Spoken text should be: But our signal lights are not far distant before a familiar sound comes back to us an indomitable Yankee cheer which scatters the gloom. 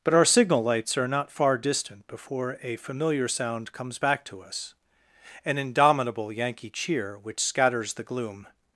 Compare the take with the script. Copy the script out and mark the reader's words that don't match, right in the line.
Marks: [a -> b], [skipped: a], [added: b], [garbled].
But our signal lights are not far distant before a familiar sound comes back to us an indomitable Yankee cheer which scatters the gloom.